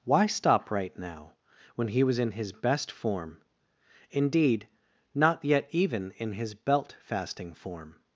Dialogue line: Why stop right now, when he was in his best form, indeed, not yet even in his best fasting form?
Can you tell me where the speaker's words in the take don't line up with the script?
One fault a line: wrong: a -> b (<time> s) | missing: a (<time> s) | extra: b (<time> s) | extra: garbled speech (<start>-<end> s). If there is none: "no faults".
wrong: best -> belt (6.5 s)